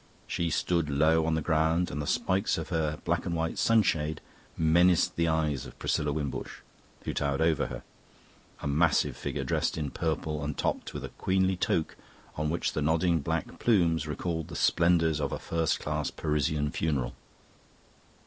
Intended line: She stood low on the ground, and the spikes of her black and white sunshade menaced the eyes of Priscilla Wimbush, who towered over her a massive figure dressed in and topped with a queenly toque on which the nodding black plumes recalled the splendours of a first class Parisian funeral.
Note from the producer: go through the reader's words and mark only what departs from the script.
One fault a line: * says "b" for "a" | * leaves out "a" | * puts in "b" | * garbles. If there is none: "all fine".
* puts in "purple"